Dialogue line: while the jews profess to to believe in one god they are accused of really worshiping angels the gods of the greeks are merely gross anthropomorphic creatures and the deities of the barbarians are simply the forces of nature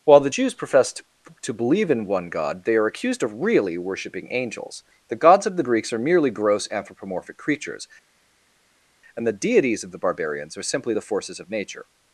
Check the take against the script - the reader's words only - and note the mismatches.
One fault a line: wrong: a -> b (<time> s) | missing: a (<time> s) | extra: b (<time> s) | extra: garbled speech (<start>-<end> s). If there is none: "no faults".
no faults